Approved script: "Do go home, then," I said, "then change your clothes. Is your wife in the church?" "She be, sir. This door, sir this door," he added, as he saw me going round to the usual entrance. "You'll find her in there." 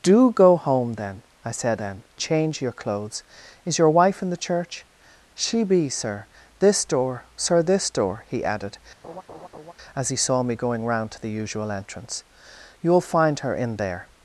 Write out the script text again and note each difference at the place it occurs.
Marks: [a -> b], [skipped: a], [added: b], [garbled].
"Do go home, then," I said, "then change your clothes. Is your wife in the church?" "She be, sir. This door, sir this door," he added, as he saw me going round to the usual entrance. "You'll find her in there."